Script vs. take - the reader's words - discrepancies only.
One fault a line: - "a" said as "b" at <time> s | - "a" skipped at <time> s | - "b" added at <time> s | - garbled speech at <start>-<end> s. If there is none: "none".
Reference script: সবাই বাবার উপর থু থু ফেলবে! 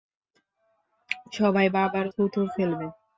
- "উপর" skipped at 2.0 s